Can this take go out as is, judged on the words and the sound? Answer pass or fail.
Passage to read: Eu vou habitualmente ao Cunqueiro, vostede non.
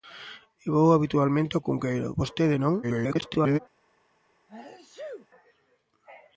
fail